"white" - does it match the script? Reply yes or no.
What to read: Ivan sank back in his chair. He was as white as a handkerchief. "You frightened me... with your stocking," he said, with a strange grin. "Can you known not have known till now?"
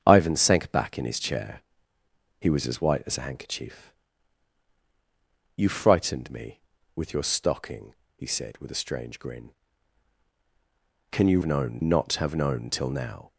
yes